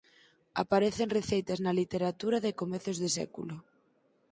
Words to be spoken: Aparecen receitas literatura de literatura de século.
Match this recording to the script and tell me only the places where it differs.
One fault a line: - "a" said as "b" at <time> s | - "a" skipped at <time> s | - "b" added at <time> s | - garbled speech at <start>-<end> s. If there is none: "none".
- "na" added at 1.6 s
- "literatura" said as "comezos" at 2.6 s